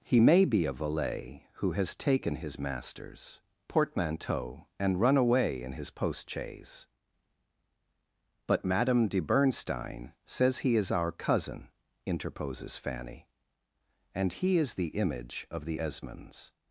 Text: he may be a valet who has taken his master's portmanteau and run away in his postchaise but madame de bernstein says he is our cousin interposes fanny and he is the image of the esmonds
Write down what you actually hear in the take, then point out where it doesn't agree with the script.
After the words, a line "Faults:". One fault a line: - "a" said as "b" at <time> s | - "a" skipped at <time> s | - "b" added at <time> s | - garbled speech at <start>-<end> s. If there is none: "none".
he may be a valet who has taken his master's portmanteau and run away in his postchaise but madame de bernstein says he is our cousin interposes fanny and he is the image of the esmonds
Faults:
none